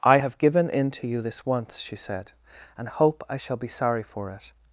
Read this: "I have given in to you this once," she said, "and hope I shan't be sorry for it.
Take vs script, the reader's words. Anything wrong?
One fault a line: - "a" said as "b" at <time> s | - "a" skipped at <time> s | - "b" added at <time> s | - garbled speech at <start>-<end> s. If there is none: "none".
- "shan't" said as "shall" at 3.4 s